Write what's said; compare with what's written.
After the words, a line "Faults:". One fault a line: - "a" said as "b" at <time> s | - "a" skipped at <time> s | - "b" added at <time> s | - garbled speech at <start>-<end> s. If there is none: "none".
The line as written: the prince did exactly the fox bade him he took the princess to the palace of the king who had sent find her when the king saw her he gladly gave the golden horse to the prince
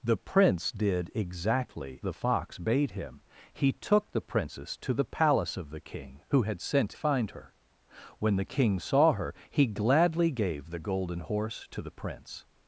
the prince did exactly the fox bade him he took the princess to the palace of the king who had sent find her when the king saw her he gladly gave the golden horse to the prince
Faults:
none